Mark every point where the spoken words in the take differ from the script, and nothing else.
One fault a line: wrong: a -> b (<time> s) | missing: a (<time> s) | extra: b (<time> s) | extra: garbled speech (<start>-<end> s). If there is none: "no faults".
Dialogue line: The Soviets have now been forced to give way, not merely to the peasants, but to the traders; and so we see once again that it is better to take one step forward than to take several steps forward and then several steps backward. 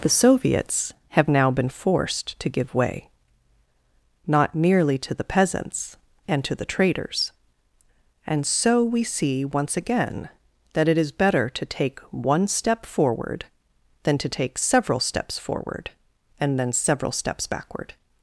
wrong: but -> and (6.2 s)